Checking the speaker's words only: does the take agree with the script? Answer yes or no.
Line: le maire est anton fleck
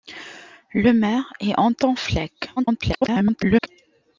no